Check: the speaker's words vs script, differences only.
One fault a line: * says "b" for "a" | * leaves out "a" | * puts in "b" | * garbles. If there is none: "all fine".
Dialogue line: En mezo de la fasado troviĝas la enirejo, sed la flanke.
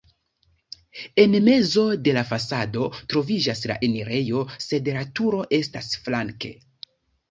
* puts in "turo estas"